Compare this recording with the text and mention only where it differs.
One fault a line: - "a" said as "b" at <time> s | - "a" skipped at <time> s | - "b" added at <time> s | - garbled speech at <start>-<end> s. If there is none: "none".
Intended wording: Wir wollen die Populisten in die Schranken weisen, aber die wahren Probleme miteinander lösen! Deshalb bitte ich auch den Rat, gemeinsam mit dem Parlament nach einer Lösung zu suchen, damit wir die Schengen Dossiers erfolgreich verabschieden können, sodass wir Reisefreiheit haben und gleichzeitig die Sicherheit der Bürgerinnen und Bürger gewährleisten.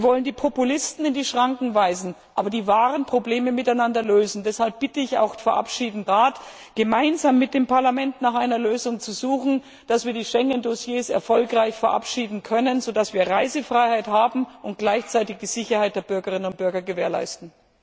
- "den" said as "verabschieden" at 5.4 s